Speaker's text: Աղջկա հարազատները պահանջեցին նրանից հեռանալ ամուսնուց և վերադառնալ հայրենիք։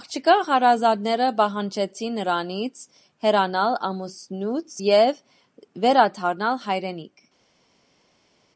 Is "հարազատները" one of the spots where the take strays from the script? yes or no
no